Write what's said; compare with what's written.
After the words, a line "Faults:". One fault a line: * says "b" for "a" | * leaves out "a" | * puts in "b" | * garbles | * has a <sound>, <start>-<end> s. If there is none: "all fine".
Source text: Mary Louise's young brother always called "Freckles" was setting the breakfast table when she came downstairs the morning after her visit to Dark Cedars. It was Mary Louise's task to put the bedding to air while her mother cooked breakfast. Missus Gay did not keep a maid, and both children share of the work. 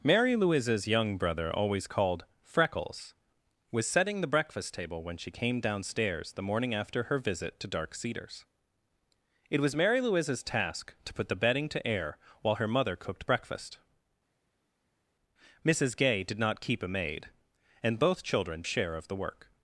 Mary Louise's young brother always called "Freckles" was setting the breakfast table when she came downstairs the morning after her visit to Dark Cedars. It was Mary Louise's task to put the bedding to air while her mother cooked breakfast. Missus Gay did not keep a maid, and both children share of the work.
Faults:
all fine